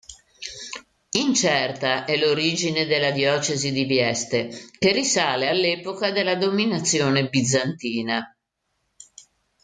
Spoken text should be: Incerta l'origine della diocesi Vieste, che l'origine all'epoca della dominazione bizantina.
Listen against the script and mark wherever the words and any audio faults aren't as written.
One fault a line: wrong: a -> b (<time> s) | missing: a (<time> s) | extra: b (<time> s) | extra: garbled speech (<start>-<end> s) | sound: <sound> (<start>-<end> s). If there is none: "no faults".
extra: è (2.0 s)
extra: di (3.7 s)
wrong: l'origine -> risale (4.9 s)